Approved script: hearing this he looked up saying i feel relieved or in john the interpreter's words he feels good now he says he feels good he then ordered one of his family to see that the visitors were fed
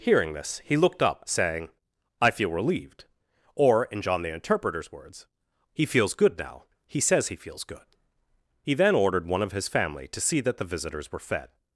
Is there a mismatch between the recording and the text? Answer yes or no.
no